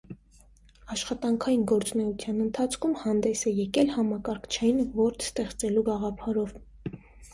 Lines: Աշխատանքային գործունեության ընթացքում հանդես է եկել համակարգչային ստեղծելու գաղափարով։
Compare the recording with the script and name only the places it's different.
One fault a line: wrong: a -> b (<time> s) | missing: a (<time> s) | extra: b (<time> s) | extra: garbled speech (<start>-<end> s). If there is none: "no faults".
extra: որդ (5.0 s)